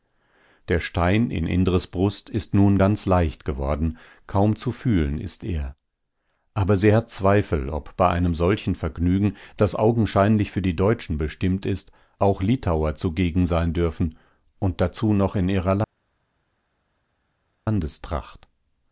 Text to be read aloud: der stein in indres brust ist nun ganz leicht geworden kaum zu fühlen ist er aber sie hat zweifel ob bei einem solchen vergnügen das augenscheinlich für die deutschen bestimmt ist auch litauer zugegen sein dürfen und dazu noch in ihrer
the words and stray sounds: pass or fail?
pass